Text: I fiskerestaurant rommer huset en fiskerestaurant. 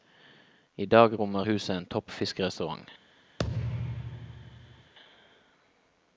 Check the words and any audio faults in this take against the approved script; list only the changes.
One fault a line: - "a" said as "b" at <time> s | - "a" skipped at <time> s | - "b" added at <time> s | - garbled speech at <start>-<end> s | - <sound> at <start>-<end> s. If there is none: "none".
- "fiskerestaurant" said as "dag" at 0.8 s
- "topp" added at 1.9 s
- thud at 3.4-4.9 s